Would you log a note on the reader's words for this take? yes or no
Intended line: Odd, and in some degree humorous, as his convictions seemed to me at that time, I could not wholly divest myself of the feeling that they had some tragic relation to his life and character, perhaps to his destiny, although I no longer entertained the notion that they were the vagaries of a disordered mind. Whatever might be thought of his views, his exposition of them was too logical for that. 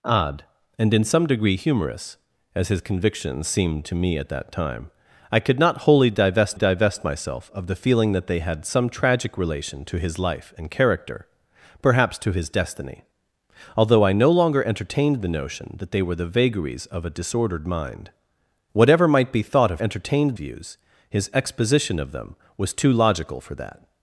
yes